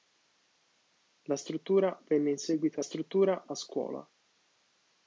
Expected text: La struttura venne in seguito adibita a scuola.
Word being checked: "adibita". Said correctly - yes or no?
no